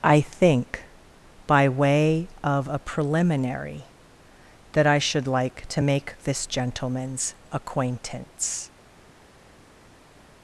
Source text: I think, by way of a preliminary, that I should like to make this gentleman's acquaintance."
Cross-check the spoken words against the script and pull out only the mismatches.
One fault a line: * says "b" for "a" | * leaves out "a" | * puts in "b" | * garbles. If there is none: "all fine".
all fine